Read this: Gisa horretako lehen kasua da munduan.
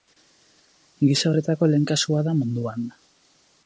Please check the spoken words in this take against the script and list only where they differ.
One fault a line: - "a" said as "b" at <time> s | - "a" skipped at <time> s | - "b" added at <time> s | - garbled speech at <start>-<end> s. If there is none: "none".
none